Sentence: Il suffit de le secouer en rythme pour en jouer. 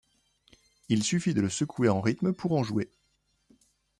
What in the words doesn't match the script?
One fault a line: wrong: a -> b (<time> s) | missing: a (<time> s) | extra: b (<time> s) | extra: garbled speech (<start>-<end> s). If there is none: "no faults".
no faults